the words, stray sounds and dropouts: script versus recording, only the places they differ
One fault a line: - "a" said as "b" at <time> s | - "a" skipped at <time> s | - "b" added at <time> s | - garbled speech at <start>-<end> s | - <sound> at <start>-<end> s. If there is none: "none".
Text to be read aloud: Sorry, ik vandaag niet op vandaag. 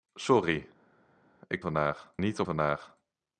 none